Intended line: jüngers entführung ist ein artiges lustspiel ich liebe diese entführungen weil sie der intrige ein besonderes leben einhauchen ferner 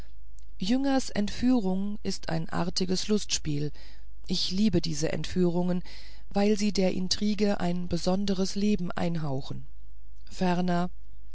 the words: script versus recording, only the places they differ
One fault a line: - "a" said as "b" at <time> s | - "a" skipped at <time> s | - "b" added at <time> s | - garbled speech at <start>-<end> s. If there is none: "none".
none